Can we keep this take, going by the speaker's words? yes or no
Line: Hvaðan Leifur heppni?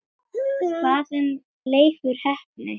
yes